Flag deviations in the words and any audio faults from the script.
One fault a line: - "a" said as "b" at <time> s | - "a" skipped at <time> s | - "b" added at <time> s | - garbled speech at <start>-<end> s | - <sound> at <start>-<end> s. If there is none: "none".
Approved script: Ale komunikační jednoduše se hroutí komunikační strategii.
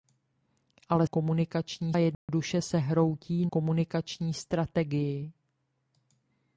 - dropout at 2.1-2.3 s